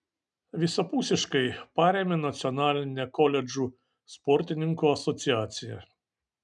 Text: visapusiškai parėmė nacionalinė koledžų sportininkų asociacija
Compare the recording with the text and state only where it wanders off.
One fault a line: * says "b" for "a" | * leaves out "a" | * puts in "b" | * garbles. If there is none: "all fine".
all fine